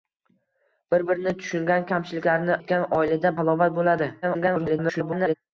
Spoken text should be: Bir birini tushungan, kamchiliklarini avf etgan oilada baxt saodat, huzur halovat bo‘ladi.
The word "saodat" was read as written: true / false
false